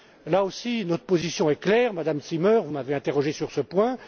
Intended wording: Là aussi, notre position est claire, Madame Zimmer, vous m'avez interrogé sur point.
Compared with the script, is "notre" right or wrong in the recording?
right